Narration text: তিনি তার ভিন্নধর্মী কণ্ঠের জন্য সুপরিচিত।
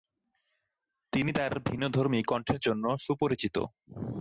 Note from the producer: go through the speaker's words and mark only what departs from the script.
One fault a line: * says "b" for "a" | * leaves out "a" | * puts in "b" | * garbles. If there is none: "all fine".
all fine